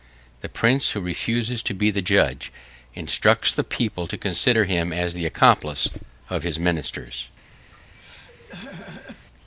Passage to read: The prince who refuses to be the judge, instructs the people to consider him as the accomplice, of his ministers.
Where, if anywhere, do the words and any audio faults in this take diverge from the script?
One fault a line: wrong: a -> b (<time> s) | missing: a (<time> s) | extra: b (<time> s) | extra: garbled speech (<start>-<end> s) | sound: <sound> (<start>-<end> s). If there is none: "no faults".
sound: throat clearing (7.7-9.3 s)